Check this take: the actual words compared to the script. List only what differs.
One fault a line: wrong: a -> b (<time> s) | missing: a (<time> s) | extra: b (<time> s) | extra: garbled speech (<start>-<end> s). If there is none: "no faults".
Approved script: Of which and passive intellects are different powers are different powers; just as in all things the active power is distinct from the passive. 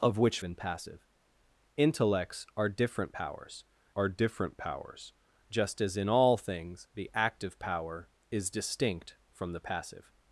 no faults